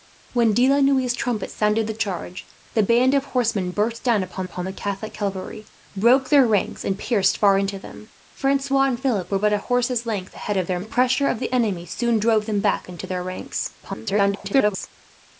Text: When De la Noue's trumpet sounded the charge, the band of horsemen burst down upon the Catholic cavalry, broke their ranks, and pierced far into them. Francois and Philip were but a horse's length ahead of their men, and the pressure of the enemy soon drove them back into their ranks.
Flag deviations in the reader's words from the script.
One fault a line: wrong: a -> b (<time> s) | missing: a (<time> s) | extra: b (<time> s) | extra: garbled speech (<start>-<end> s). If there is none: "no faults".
extra: upon (4.4 s)
missing: men and (10.8 s)
extra: garbled speech (13.8-14.9 s)